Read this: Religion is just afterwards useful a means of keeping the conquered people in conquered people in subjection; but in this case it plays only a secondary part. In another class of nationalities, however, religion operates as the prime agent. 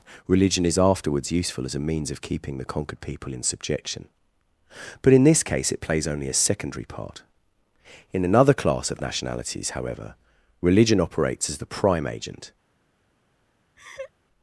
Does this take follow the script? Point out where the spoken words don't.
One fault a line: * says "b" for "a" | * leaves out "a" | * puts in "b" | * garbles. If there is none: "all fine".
* leaves out "just"
* puts in "as"
* leaves out "conquered people in"